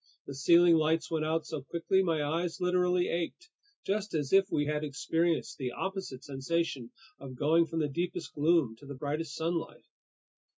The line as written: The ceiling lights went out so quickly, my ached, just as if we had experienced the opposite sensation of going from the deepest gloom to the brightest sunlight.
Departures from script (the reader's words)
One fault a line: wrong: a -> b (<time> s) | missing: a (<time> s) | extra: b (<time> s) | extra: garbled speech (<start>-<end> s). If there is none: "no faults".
extra: eyes literally (2.2 s)